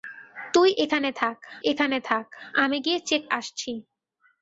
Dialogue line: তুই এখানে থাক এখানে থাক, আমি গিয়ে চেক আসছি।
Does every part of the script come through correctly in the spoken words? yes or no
yes